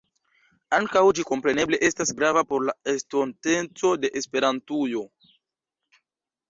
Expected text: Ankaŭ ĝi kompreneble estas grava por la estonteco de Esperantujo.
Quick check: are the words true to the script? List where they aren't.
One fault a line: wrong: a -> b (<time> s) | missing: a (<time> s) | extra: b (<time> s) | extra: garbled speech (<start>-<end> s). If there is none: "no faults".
no faults